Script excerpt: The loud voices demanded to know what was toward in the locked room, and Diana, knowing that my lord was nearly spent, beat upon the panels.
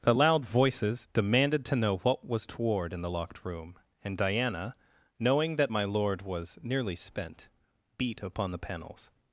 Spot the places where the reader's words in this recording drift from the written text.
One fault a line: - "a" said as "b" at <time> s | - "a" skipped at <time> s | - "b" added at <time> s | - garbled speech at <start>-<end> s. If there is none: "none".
none